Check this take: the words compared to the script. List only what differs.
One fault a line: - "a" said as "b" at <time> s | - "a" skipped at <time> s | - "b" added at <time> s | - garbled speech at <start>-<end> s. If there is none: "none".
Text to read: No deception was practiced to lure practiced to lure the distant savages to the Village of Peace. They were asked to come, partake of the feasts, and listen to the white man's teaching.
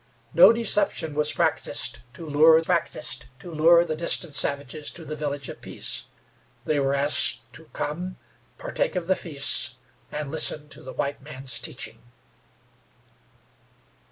none